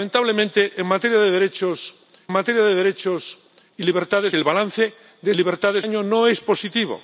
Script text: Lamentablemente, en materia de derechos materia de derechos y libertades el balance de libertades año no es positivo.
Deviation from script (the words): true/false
false